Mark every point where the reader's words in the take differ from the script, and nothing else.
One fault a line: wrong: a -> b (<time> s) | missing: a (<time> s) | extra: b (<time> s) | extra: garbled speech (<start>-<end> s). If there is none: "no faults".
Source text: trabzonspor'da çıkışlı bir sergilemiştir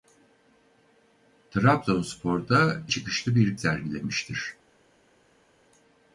no faults